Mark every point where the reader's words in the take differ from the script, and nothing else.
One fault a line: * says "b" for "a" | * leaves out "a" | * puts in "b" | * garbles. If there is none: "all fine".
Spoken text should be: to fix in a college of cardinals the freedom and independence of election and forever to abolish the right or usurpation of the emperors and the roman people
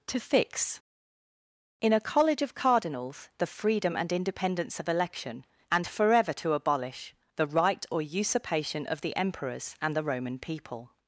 all fine